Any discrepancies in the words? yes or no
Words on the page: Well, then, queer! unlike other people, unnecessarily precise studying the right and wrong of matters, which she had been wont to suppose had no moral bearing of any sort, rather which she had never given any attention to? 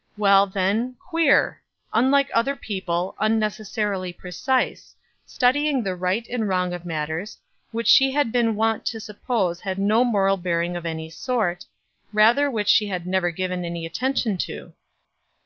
no